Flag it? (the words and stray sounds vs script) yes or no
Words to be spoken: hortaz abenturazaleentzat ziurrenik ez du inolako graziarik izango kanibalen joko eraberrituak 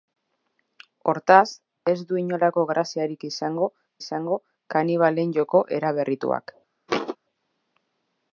yes